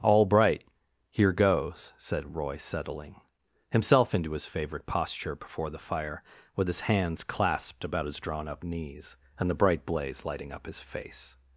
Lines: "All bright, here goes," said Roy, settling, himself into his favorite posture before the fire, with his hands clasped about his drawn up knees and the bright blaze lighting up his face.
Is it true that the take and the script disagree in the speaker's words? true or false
false